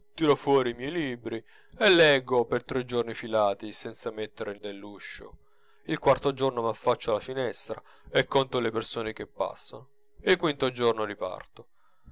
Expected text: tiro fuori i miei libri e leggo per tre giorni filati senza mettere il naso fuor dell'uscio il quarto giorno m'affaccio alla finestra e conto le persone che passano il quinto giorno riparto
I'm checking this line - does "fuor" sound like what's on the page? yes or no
no